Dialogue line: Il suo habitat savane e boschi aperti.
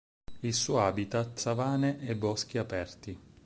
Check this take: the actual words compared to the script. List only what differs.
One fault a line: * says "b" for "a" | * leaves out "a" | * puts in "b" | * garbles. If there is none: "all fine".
all fine